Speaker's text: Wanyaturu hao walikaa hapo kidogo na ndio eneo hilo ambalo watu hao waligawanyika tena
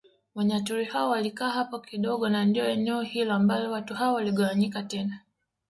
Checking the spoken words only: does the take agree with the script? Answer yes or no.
yes